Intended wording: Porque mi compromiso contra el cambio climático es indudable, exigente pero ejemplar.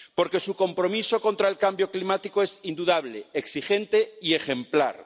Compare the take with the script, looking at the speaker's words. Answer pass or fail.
fail